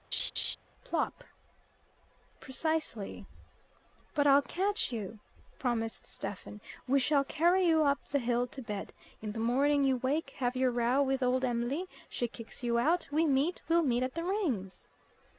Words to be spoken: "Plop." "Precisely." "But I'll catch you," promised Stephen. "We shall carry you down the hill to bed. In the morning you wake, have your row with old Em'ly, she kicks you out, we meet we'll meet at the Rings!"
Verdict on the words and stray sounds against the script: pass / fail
fail